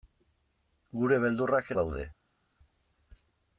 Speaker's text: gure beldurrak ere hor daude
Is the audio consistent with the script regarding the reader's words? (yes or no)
no